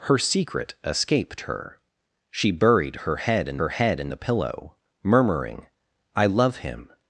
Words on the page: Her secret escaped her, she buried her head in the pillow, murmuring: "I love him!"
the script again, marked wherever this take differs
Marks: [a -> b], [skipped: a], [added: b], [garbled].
Her secret escaped her, she buried her head in [added: her head in] the pillow, murmuring: "I love him!"